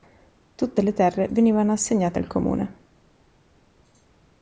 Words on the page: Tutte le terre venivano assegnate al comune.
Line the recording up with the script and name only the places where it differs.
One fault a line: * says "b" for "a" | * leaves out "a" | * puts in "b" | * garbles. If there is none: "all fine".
all fine